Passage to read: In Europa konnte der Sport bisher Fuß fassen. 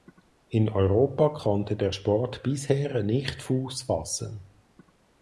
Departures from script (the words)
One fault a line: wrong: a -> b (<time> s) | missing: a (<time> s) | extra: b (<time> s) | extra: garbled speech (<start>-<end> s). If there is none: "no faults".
extra: nicht (3.0 s)